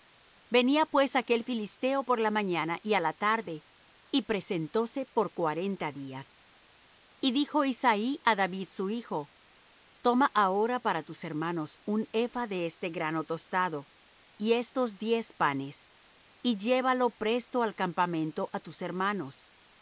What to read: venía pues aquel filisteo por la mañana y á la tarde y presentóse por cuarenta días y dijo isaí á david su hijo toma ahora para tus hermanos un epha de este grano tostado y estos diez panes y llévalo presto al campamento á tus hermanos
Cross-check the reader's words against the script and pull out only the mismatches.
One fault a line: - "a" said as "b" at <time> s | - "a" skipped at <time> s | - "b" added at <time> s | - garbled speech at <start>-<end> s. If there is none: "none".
none